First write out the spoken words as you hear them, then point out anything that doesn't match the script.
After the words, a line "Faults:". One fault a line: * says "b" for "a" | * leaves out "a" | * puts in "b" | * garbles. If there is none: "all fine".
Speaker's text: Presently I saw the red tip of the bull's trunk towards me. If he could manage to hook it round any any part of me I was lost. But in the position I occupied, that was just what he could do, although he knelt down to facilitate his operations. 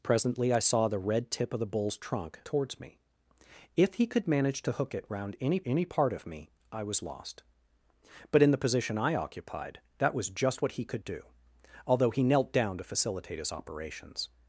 Presently I saw the red tip of the bull's trunk towards me. If he could manage to hook it round any any part of me I was lost. But in the position I occupied, that was just what he could do, although he knelt down to facilitate his operations.
Faults:
all fine